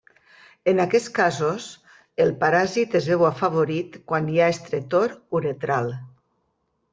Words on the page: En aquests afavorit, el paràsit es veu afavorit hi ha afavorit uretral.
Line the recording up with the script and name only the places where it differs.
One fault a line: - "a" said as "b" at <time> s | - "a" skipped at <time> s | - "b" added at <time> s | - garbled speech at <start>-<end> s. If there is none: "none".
- "afavorit" said as "casos" at 1.2 s
- "quan" added at 4.1 s
- "afavorit" said as "estretor" at 4.5 s